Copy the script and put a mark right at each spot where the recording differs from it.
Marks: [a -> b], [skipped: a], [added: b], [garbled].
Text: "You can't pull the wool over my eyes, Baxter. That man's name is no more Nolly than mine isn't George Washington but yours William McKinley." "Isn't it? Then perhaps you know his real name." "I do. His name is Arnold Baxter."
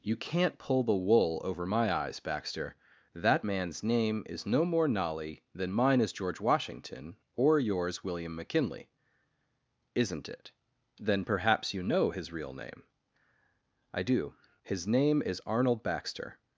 "You can't pull the wool over my eyes, Baxter. That man's name is no more Nolly than mine [isn't -> is] George Washington [but -> or] yours William McKinley." "Isn't it? Then perhaps you know his real name." "I do. His name is Arnold Baxter."